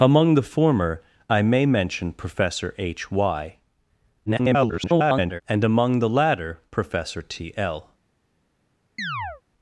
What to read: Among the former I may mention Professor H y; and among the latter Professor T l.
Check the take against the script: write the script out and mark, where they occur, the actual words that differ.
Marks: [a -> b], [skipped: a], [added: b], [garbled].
Among the former I may mention Professor H y; [garbled] and among the latter Professor T l.